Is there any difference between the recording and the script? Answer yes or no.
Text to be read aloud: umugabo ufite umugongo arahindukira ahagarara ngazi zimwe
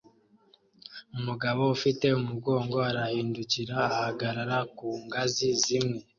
yes